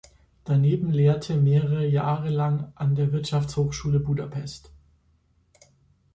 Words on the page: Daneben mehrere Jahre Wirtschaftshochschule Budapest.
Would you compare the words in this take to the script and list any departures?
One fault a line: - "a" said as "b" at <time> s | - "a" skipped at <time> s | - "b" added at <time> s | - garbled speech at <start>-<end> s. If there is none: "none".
- "lehrte" added at 0.9 s
- "lang an der" added at 2.3 s